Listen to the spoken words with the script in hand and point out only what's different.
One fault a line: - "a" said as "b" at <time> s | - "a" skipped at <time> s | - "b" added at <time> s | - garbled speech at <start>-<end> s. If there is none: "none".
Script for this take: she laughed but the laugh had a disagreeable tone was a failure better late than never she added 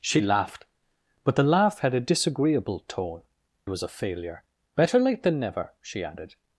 none